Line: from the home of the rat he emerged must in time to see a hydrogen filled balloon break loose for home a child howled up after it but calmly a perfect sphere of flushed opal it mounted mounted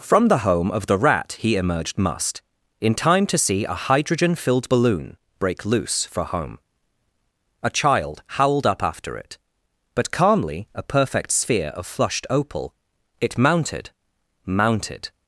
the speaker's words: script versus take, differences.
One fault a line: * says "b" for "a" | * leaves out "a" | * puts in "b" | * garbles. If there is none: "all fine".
all fine